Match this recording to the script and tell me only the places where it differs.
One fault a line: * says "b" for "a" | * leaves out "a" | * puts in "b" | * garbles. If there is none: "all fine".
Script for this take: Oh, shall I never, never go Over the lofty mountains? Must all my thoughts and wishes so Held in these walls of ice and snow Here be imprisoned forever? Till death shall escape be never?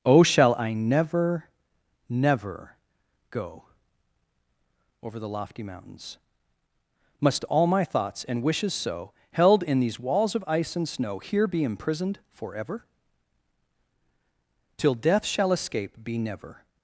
all fine